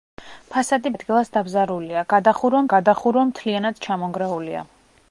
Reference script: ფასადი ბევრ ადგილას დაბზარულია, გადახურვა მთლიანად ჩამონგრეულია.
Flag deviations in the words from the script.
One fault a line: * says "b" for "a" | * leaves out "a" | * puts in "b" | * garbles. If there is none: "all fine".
* leaves out "ბევრ"
* puts in "გადახურვა"